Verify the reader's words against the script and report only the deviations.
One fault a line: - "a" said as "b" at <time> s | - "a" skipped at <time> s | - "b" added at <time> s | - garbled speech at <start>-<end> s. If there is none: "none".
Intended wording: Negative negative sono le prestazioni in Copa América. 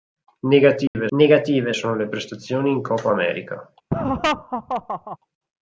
none